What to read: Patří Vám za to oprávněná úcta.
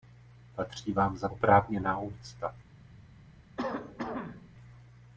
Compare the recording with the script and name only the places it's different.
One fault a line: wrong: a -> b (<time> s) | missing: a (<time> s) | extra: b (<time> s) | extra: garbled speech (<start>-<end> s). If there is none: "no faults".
missing: to (1.3 s)